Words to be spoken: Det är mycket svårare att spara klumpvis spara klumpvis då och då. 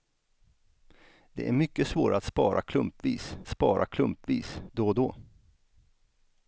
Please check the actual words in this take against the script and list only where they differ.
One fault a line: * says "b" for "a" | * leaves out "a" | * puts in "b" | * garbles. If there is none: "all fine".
all fine